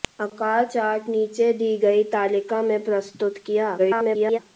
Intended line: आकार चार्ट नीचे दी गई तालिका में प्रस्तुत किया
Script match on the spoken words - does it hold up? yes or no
no